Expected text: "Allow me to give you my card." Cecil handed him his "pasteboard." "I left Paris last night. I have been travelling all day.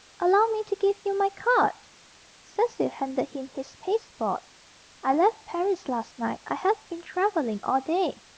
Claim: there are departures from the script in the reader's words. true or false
false